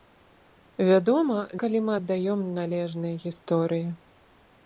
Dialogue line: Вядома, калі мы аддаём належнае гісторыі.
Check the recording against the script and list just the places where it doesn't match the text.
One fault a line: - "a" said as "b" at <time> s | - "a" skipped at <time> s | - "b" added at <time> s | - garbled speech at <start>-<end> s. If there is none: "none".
none